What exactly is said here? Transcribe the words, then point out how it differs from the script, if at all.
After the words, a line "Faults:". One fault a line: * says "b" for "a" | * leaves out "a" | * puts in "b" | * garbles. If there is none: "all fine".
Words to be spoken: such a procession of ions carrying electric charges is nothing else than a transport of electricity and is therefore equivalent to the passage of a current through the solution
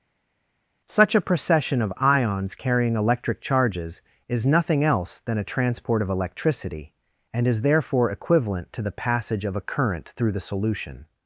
such a procession of ions carrying electric charges is nothing else than a transport of electricity and is therefore equivalent to the passage of a current through the solution
Faults:
all fine